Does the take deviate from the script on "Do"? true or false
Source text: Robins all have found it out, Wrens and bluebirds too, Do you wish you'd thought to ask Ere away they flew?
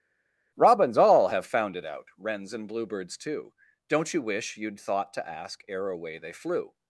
true